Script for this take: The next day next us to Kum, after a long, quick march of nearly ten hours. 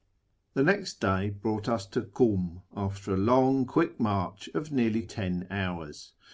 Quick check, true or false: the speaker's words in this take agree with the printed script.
false